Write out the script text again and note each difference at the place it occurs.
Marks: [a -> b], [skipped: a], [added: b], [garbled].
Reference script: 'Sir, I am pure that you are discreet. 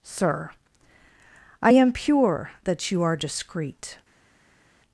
'Sir, I am pure that you are discreet.